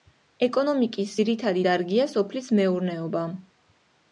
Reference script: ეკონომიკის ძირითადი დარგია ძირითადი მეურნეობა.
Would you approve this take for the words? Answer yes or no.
no